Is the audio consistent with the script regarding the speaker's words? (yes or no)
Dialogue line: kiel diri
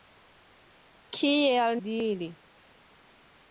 yes